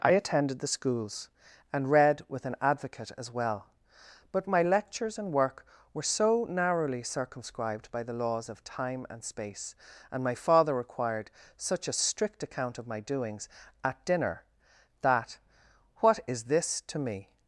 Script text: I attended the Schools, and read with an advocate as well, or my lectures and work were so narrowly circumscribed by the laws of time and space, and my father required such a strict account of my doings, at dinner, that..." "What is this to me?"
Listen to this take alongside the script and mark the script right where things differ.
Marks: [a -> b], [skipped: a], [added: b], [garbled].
I attended the Schools, and read with an advocate as well, [or -> but] my lectures and work were so narrowly circumscribed by the laws of time and space, and my father required such a strict account of my doings, at dinner, that..." "What is this to me?"